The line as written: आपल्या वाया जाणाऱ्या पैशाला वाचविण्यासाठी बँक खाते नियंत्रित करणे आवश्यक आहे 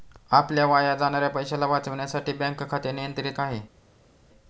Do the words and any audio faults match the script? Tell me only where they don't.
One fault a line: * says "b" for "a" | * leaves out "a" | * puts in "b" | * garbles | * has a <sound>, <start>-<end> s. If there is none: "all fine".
* leaves out "करणे आवश्यक"